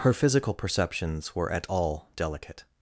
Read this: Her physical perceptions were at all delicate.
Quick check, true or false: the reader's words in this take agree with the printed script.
true